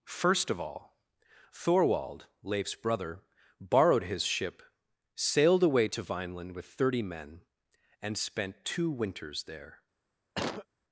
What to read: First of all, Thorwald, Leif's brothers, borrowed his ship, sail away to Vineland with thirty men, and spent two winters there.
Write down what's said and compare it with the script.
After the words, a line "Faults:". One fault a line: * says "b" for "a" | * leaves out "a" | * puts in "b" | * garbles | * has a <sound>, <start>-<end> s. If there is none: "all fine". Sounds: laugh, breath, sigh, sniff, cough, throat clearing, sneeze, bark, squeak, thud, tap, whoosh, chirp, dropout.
First of all, Thorwald, Leif's brother, borrowed his ship, sailed away to Vineland with thirty men, and spent two winters there.
Faults:
* says "brother" for "brothers"
* says "sailed" for "sail"
* has a cough, 10.3-10.7 s